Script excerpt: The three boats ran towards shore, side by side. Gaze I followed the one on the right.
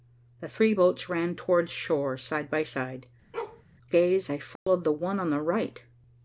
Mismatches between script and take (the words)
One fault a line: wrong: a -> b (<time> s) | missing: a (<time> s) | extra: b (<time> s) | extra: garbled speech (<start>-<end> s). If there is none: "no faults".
no faults